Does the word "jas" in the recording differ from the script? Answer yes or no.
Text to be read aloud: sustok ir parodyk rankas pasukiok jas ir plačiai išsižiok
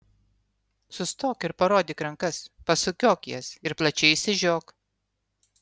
no